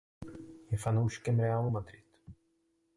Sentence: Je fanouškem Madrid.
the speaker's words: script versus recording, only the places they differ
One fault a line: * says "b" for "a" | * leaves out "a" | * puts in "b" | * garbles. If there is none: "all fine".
* puts in "Realu"